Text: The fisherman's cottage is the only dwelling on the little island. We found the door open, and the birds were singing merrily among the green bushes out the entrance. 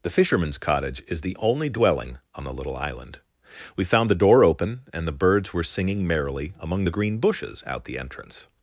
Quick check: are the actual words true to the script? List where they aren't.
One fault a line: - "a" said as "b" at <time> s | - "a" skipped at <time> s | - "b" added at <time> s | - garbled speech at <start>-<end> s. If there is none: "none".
none